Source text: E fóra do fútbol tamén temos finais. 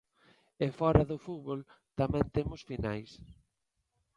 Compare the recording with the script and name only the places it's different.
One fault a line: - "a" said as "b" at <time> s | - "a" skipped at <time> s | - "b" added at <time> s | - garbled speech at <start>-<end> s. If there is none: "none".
none